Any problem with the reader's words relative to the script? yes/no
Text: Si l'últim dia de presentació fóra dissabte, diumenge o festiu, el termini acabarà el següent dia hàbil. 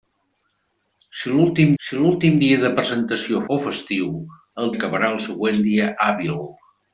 yes